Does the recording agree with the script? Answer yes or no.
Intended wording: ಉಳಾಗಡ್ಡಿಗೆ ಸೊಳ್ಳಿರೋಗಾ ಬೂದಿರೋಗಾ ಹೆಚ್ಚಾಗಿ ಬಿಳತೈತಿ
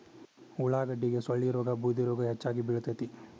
yes